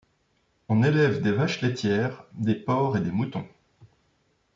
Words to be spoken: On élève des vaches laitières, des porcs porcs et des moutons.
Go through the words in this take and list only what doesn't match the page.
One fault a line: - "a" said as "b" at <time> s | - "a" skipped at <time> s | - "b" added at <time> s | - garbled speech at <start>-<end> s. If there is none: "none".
- "porcs" skipped at 3.0 s